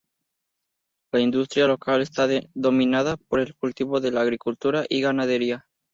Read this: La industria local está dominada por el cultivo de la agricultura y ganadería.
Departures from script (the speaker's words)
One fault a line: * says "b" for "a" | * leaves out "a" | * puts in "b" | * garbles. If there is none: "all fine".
all fine